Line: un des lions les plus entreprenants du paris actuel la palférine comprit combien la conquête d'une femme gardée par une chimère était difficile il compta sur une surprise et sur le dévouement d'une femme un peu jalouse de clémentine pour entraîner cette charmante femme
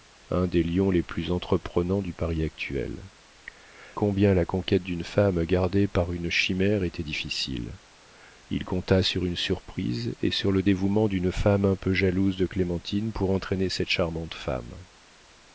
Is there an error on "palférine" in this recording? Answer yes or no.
yes